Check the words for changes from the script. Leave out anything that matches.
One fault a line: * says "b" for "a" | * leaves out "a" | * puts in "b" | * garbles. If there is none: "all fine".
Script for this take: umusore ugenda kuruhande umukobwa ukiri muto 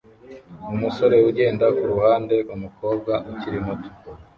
all fine